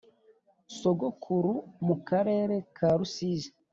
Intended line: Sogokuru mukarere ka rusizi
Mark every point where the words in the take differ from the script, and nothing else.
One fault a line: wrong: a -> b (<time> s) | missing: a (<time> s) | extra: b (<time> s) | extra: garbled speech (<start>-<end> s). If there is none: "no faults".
no faults